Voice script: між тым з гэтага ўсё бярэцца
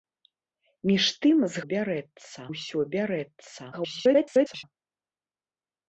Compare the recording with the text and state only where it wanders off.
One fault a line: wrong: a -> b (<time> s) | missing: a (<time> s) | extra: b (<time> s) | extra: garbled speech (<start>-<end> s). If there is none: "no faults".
wrong: гэтага -> бярэцца (1.7 s)
extra: garbled speech (3.7-4.6 s)